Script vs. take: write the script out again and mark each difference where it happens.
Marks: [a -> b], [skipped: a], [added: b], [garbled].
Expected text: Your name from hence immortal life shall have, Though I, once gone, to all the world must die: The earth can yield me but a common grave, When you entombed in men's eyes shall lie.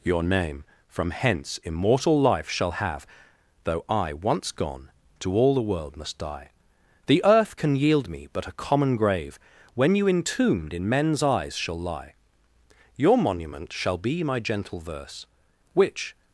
Your name from hence immortal life shall have, Though I, once gone, to all the world must die: The earth can yield me but a common grave, When you entombed in men's eyes shall lie. [added: Your monument shall be my gentle verse Which]